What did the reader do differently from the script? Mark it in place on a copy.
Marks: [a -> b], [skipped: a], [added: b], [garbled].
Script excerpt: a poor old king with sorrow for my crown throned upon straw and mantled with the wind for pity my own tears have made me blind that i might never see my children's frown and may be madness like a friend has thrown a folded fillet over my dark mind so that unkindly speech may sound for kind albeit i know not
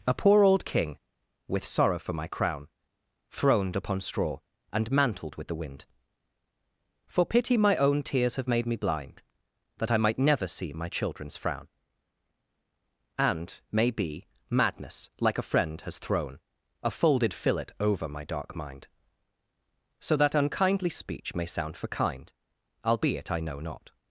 a poor old king with sorrow for my crown throned upon straw and mantled with the wind for pity my own tears have made me blind that i might never see my children's frown and may be madness like a friend has thrown a folded fillet over my dark mind so that unkindly speech may sound for kind albeit i know not